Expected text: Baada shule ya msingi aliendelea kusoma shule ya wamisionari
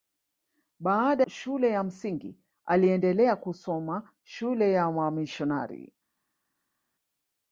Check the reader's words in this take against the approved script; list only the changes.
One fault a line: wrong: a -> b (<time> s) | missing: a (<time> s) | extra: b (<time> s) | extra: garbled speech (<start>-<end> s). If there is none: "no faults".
no faults